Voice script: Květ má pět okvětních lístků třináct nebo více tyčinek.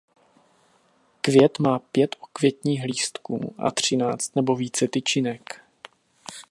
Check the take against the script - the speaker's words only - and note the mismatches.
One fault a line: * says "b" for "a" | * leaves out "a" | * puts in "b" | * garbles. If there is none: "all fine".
* puts in "a"